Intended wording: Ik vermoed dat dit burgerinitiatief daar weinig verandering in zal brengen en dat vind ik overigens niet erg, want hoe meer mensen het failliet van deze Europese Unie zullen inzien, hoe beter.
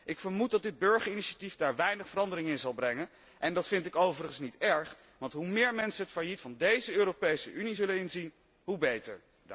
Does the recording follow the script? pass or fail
pass